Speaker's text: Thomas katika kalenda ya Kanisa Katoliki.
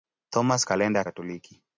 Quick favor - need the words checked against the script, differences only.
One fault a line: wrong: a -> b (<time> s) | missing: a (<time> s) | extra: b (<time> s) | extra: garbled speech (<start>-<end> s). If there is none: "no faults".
missing: katika (0.7 s)
missing: Kanisa (1.1 s)